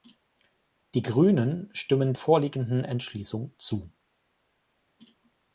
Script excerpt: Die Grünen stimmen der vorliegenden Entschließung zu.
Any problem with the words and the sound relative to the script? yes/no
yes